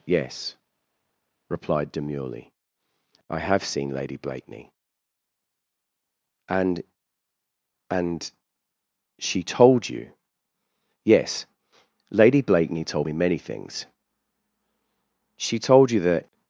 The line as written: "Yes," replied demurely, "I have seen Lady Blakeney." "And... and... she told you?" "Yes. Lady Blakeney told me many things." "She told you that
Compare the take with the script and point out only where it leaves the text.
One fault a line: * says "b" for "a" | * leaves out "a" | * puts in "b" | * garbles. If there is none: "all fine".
all fine